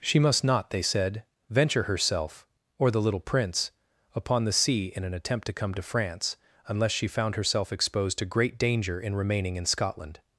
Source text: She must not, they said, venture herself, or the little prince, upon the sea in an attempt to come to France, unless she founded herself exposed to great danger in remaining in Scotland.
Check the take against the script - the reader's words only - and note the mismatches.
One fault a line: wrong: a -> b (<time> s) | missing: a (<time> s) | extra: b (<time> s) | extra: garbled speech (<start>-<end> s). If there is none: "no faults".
wrong: founded -> found (7.1 s)